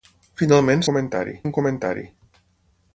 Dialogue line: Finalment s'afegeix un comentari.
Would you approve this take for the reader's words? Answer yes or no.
no